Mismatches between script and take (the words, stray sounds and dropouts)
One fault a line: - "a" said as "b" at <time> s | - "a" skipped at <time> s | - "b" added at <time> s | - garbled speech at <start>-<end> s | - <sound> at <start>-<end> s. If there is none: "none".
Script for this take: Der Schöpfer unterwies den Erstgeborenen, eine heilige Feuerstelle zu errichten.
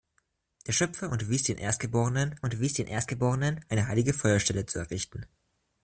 - "unterwies den Erstgeborenen" added at 2.4 s